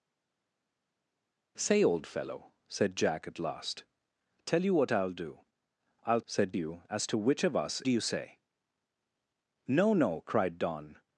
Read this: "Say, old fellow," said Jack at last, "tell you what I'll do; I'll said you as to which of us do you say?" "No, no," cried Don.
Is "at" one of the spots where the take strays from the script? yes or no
no